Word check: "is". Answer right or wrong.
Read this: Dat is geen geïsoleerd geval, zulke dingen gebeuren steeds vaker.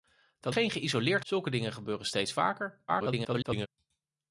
wrong